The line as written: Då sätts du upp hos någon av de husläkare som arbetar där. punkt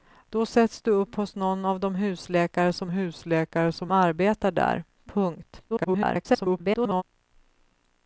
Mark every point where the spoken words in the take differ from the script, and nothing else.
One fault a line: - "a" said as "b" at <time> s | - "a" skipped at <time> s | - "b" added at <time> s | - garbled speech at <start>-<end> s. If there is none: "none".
- "husläkare som" added at 2.9 s
- garbled speech at 5.7-7.0 s